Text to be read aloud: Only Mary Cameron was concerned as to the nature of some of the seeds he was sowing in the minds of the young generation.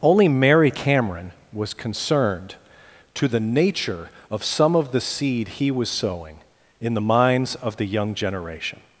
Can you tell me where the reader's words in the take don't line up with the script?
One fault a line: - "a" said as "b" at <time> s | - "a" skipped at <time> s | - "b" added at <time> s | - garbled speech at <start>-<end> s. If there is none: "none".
- "as" skipped at 2.5 s
- "seeds" said as "seed" at 5.0 s